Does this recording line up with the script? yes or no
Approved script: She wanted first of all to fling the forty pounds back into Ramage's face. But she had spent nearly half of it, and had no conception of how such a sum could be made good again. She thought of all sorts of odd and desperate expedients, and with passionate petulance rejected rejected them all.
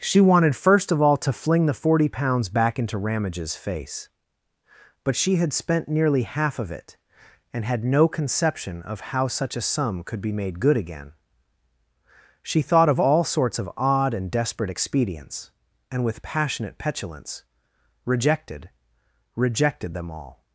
yes